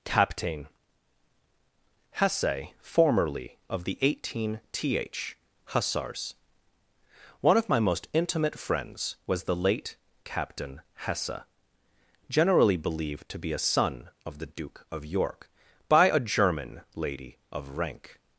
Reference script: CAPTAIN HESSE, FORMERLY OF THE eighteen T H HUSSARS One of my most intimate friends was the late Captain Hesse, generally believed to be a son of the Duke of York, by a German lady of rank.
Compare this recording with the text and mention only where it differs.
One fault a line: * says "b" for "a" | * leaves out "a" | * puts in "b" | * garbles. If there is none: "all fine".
all fine